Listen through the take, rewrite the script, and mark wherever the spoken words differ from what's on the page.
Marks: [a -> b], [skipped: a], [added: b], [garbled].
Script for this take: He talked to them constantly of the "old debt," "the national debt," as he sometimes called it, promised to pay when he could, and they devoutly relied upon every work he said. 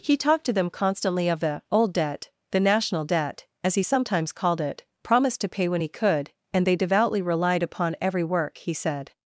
He talked to them constantly of the "old debt," "the national debt," as he sometimes called it, promised to pay when he could, and they devoutly relied upon every work he said.